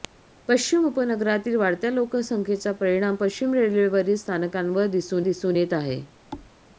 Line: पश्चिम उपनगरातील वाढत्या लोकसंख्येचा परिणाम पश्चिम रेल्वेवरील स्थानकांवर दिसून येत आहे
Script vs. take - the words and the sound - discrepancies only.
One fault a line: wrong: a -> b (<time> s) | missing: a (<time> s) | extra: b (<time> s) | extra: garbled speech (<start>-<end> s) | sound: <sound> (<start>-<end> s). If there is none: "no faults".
extra: दिसून (5.2 s)
sound: thud (6.3-6.5 s)